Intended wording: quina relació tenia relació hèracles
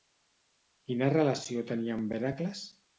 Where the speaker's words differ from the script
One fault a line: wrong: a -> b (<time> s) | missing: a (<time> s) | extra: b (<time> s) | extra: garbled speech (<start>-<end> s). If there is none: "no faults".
wrong: relació -> amb (2.0 s)